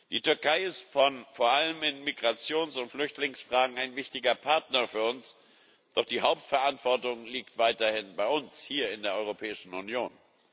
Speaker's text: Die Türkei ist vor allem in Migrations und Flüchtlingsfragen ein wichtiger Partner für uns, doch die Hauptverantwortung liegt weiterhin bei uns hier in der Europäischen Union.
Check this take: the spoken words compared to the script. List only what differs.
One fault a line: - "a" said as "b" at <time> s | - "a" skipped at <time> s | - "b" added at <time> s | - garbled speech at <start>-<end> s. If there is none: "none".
none